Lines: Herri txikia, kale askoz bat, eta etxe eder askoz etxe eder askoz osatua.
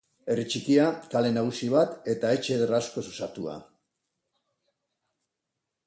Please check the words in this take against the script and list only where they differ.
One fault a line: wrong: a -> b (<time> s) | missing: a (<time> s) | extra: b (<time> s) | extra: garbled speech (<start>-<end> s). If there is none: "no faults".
wrong: askoz -> nagusi (1.4 s)
missing: etxe eder askoz (3.0 s)